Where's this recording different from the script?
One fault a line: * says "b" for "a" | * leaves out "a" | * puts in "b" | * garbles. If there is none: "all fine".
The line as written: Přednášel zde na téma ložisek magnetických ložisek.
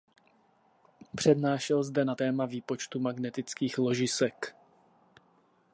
* says "výpočtu" for "ložisek"